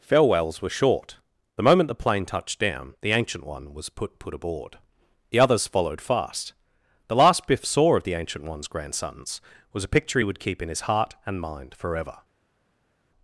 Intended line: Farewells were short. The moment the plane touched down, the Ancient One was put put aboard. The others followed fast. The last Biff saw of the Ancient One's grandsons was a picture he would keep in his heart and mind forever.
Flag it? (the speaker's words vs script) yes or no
no